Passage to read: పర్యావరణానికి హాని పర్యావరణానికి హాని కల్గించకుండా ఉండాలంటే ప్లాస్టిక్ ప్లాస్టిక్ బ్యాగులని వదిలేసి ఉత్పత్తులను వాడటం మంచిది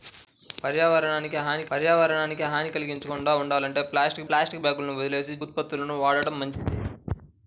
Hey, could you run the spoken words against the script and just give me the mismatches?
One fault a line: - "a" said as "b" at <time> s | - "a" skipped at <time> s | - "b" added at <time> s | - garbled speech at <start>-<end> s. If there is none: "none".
none